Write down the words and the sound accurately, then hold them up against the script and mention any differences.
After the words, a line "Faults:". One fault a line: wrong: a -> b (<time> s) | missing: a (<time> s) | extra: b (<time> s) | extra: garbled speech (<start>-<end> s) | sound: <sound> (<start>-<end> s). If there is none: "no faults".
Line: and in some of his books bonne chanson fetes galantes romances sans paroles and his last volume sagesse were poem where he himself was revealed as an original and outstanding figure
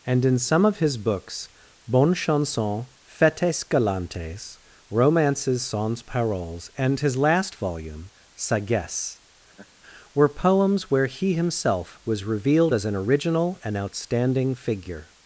and in some of his books bonne chanson fetes galantes romances sans paroles and his last volume sagesse were poems where he himself was revealed as an original and outstanding figure
Faults:
sound: laugh (9.5-9.7 s)
wrong: poem -> poems (10.3 s)